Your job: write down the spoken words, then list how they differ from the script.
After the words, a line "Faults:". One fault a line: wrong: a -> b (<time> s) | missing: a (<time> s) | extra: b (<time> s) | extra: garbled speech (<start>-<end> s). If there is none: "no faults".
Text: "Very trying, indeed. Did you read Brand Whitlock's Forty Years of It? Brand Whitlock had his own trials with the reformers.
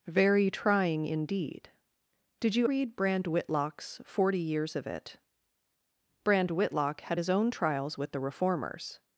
"Very trying, indeed. Did you read Brand Whitlock's Forty Years of It? Brand Whitlock had his own trials with the reformers.
Faults:
no faults